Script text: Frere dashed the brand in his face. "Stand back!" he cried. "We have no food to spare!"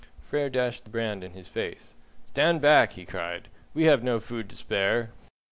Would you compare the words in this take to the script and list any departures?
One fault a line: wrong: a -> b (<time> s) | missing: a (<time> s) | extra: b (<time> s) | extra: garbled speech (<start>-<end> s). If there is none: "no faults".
no faults